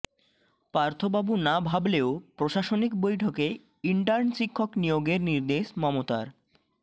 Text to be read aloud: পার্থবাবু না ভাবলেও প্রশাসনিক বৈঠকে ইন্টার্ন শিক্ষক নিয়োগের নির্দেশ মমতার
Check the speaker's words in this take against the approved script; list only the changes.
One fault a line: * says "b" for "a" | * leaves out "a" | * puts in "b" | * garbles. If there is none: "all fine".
all fine